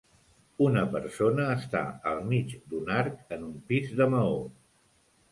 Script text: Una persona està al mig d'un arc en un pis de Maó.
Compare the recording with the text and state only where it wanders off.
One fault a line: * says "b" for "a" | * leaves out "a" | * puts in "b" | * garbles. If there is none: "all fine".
all fine